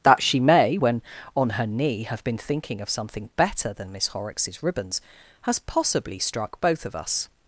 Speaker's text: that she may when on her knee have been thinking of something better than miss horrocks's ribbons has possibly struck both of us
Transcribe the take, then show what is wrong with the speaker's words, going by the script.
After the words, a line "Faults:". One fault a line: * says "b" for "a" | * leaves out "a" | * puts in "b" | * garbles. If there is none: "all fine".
that she may when on her knee have been thinking of something better than miss horrocks's ribbons has possibly struck both of us
Faults:
all fine